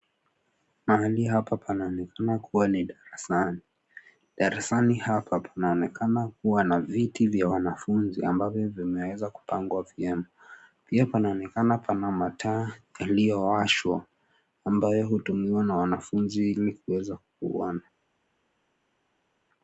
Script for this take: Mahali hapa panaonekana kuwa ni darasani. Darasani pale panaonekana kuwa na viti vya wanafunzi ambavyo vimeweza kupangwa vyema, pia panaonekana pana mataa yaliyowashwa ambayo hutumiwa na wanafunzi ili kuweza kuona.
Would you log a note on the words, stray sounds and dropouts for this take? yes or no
yes